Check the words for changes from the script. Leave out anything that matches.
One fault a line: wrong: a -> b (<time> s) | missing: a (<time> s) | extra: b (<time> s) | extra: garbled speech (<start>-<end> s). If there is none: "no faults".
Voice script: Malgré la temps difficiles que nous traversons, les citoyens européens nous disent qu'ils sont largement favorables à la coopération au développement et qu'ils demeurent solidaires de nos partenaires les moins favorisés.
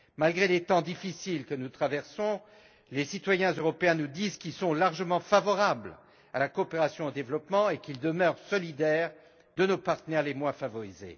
wrong: la -> les (0.5 s)